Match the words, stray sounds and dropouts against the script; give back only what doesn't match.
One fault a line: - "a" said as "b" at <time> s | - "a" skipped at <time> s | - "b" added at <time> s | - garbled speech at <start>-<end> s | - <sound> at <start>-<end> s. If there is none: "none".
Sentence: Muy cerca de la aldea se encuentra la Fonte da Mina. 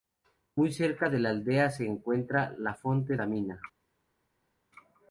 none